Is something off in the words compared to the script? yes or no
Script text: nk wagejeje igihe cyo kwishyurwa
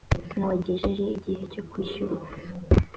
no